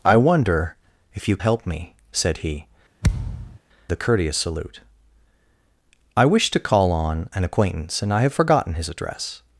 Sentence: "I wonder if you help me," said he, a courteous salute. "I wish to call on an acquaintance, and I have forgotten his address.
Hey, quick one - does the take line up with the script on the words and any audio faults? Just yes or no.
no